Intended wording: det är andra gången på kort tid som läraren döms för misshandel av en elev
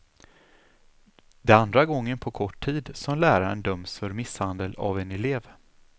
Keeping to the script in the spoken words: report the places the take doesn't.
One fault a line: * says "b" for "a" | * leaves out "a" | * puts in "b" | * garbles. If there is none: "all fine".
all fine